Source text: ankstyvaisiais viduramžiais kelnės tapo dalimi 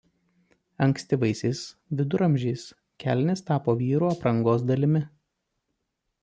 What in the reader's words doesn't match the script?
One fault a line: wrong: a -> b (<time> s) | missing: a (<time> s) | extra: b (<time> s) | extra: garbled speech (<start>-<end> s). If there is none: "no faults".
extra: vyrų aprangos (3.8 s)